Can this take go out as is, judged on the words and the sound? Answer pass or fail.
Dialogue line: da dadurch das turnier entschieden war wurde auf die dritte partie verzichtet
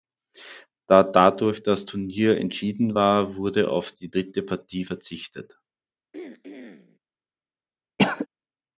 fail